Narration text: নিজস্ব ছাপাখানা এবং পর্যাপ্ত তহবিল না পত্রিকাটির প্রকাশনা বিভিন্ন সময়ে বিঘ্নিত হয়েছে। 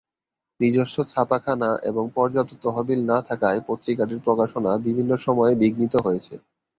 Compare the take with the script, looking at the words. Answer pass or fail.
fail